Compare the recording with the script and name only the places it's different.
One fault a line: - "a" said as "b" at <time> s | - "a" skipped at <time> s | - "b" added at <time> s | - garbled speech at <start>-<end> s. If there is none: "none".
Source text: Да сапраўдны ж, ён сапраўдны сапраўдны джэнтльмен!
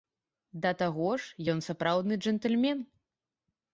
- "сапраўдны" said as "таго" at 0.8 s
- "сапраўдны" skipped at 2.1 s